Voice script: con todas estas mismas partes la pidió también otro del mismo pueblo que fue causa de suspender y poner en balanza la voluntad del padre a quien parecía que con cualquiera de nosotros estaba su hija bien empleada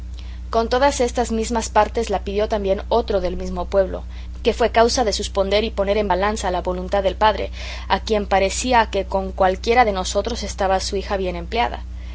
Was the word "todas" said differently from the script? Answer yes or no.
no